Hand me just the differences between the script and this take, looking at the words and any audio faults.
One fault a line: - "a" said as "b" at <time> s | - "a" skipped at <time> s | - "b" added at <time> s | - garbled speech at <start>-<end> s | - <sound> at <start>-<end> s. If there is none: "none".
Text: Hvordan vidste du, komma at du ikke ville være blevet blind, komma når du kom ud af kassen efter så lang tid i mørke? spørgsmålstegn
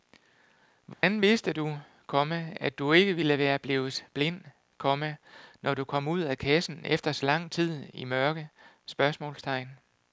- dropout at 0.9-1.0 s